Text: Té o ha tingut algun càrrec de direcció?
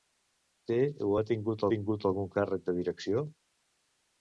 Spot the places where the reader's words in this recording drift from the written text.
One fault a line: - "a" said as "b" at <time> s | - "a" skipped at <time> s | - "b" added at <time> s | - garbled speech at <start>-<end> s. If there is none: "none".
- "tingut" added at 1.7 s